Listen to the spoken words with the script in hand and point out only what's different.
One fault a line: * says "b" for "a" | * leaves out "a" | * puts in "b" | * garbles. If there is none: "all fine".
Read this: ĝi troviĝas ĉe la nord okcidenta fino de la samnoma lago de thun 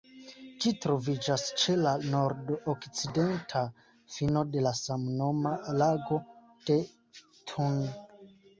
all fine